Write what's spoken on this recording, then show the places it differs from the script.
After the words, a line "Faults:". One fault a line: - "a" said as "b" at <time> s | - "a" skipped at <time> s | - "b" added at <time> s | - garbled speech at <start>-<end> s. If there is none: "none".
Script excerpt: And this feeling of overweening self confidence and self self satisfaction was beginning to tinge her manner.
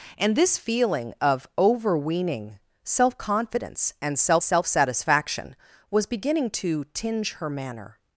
And this feeling of overweening self confidence and self self satisfaction was beginning to tinge her manner.
Faults:
none